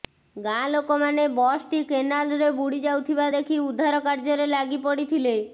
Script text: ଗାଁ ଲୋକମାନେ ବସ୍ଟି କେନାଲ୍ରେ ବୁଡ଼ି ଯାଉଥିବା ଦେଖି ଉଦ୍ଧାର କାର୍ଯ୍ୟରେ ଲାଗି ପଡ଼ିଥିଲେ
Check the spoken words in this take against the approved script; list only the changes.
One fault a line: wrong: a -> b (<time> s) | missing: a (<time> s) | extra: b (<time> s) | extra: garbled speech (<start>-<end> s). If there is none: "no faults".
no faults